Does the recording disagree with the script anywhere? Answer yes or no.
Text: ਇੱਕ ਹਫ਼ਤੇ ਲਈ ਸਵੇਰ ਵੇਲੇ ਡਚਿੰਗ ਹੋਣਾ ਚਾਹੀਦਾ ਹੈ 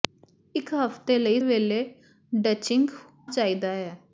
yes